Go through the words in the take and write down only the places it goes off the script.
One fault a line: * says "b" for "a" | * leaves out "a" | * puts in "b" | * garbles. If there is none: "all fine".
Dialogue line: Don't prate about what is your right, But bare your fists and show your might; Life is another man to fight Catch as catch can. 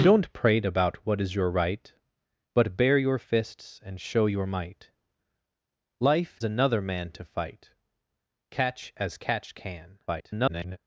* leaves out "is"
* garbles